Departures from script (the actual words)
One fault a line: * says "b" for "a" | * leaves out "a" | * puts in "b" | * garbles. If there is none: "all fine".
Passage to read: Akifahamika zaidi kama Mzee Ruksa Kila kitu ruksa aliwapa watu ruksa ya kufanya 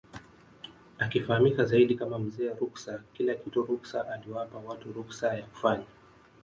all fine